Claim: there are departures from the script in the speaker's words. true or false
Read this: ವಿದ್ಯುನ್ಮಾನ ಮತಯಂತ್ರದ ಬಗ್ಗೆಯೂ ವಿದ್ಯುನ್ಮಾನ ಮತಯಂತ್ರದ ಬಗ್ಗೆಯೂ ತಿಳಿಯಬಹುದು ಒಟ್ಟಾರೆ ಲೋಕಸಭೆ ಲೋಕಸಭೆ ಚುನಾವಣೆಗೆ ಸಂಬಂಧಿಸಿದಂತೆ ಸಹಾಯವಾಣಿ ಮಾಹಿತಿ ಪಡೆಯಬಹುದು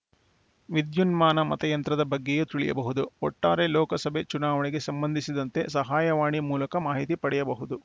true